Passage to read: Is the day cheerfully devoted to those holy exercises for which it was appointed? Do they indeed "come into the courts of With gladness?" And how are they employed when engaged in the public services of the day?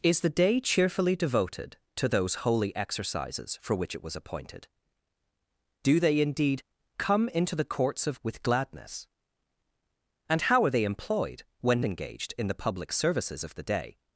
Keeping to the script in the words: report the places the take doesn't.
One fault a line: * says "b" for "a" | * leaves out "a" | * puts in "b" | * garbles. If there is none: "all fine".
all fine